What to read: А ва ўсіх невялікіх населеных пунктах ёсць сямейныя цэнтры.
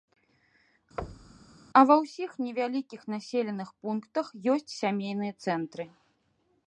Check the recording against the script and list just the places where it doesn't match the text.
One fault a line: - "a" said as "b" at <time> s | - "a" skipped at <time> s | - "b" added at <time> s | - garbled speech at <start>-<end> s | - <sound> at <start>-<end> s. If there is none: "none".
- thud at 1.0-1.5 s